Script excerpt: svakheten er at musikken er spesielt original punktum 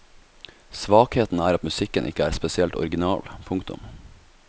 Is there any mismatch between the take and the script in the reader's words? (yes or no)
yes